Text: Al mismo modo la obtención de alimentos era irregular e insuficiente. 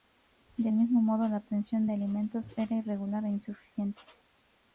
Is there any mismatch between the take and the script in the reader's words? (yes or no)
yes